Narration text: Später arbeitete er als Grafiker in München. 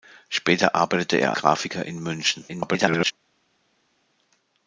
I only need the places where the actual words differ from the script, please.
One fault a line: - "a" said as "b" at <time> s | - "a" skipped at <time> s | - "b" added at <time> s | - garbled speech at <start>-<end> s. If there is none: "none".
- "als" skipped at 1.3 s
- garbled speech at 2.5-3.1 s